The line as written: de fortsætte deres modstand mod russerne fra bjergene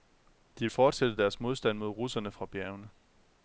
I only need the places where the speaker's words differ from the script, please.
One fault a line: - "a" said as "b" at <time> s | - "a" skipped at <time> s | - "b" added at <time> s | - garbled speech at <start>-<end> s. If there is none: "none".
none